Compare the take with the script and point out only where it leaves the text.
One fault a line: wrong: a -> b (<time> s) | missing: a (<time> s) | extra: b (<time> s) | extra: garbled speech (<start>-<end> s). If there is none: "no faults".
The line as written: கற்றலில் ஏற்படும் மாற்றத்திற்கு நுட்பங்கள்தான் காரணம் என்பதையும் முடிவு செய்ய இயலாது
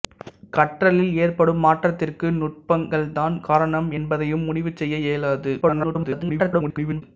extra: garbled speech (5.6-7.0 s)